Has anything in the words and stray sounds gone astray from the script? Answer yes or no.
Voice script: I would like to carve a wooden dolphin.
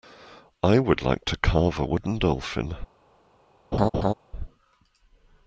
yes